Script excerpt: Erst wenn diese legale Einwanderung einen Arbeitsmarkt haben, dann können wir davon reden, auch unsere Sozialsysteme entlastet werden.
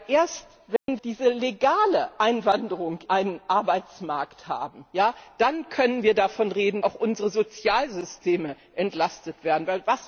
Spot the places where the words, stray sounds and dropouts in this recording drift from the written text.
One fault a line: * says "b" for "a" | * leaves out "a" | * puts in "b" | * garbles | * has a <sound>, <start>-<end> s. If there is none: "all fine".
* has a dropout, 0.8-0.9 s